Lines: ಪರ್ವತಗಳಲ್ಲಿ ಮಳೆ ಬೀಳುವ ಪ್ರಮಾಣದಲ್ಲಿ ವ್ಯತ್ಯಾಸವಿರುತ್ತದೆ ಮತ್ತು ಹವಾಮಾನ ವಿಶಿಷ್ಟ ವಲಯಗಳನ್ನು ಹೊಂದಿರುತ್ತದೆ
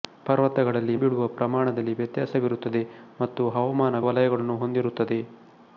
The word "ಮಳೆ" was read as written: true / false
false